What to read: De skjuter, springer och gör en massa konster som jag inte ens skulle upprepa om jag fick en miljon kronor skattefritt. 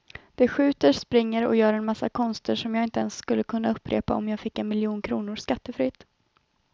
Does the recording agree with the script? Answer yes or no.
no